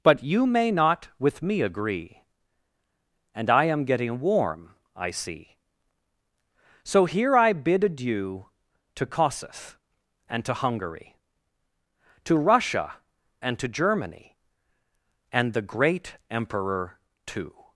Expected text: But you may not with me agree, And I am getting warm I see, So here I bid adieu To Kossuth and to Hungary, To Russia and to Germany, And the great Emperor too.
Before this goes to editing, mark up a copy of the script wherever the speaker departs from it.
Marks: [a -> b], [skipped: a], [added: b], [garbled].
But you may not with me agree, And I am getting warm I see, So here I bid adieu To Kossuth and to Hungary, To Russia and to Germany, And the great Emperor too.